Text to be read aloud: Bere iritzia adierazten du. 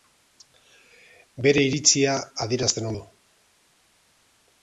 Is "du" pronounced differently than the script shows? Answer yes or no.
no